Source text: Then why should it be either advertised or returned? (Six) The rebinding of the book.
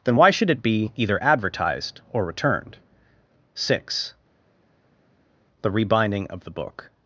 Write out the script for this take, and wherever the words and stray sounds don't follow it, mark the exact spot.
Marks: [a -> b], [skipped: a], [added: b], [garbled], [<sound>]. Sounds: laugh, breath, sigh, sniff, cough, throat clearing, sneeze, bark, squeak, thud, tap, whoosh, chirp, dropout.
Then why should it be either advertised or returned? (Six) The rebinding of the book.